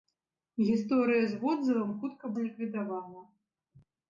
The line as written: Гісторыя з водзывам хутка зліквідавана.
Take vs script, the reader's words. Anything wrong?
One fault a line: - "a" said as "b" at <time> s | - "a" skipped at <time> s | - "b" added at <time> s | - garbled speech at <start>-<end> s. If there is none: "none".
none